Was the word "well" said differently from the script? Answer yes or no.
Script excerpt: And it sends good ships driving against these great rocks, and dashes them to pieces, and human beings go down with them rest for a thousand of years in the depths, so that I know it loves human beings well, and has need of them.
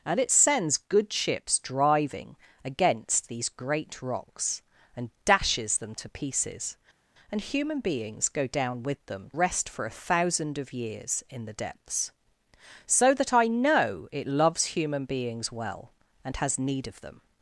no